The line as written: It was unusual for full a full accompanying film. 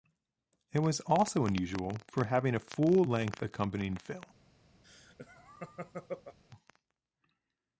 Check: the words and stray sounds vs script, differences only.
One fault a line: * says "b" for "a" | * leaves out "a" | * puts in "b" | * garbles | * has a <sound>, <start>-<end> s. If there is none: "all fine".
* puts in "also"
* says "having" for "full"
* puts in "length"
* has a laugh, 4.8-6.4 s